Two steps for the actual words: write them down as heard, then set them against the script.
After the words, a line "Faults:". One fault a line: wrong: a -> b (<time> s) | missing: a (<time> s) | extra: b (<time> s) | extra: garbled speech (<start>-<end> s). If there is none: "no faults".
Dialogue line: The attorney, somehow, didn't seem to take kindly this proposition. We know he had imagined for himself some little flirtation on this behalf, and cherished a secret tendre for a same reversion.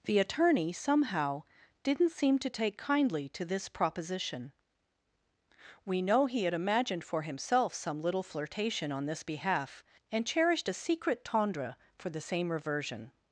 The attorney, somehow, didn't seem to take kindly to this proposition. We know he had imagined for himself some little flirtation on this behalf, and cherished a secret tendre for the same reversion.
Faults:
extra: to (3.3 s)
wrong: a -> the (12.1 s)